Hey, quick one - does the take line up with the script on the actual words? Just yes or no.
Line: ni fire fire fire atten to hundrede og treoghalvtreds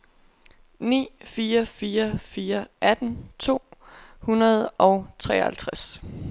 yes